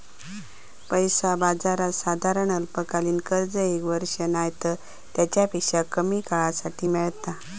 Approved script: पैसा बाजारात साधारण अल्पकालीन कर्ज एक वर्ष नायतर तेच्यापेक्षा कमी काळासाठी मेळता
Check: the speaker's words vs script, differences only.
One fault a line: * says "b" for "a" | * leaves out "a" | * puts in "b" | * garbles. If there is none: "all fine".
all fine